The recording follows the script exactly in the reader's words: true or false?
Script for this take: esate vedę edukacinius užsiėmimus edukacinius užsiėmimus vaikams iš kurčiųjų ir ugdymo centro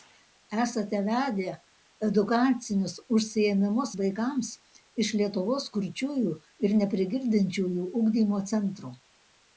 false